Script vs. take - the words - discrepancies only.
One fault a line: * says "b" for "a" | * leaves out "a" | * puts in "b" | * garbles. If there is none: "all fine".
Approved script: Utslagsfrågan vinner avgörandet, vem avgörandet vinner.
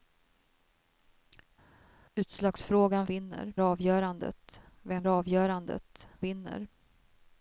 all fine